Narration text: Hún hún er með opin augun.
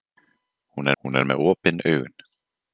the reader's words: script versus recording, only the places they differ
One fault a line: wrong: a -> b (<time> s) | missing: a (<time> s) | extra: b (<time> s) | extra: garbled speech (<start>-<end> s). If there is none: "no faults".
no faults